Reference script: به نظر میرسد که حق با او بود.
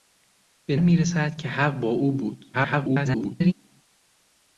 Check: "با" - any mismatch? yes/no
no